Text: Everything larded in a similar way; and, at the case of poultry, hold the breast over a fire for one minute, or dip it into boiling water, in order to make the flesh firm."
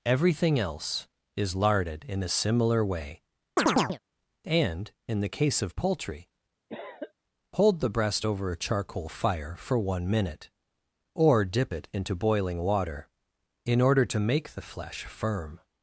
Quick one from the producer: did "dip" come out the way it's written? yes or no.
yes